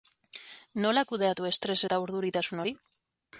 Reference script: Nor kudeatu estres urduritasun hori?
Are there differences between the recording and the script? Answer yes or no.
yes